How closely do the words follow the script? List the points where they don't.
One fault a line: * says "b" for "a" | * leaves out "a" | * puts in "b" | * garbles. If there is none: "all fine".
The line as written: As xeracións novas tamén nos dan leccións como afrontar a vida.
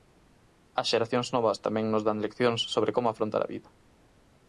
* puts in "sobre"